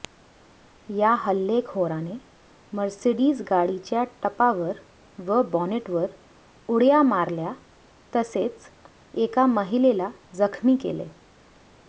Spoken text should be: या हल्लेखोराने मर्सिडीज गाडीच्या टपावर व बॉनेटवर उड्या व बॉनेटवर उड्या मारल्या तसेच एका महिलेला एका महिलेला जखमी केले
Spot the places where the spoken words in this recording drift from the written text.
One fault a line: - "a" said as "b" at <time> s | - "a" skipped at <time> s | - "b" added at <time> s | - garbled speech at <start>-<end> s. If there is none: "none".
- "व बॉनेटवर उड्या" skipped at 7.0 s
- "एका महिलेला" skipped at 10.1 s